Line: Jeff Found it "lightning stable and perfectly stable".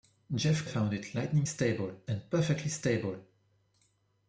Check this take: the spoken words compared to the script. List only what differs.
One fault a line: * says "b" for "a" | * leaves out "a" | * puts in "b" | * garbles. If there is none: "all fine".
all fine